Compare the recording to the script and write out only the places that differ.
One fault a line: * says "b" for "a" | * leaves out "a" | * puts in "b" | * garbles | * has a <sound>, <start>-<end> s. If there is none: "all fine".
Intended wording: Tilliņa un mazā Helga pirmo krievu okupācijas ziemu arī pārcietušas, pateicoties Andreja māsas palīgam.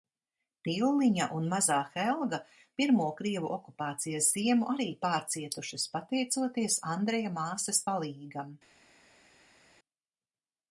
all fine